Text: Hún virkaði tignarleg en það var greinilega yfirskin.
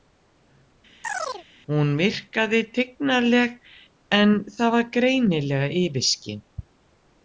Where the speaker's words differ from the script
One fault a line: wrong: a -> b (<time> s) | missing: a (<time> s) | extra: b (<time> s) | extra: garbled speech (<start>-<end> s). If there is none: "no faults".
no faults